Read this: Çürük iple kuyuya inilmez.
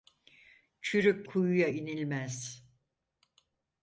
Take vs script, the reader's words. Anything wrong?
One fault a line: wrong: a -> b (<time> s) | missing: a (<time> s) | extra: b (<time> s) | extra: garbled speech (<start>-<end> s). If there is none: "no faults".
missing: iple (1.3 s)